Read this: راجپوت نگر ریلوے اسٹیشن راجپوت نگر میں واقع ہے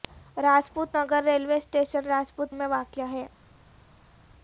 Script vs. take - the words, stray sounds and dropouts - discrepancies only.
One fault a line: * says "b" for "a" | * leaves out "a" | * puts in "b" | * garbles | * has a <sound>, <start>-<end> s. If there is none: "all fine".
* leaves out "نگر"